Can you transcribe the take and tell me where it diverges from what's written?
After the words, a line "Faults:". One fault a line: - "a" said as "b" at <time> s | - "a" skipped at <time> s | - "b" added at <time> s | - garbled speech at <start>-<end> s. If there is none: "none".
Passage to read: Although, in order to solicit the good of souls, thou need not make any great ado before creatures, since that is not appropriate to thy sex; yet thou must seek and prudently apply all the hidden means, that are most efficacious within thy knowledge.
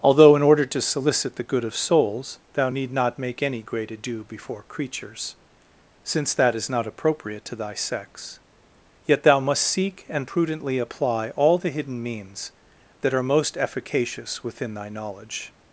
Although, in order to solicit the good of souls, thou need not make any great ado before creatures, since that is not appropriate to thy sex; yet thou must seek and prudently apply all the hidden means, that are most efficacious within thy knowledge.
Faults:
none